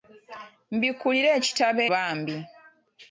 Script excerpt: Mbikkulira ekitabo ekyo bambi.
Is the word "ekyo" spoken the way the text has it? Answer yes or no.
no